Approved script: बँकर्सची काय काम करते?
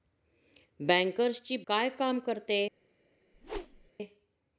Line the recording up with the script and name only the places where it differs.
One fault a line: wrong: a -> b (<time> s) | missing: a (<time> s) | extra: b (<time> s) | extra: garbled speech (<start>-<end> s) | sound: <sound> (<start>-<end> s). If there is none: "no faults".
sound: whoosh (3.3-3.9 s)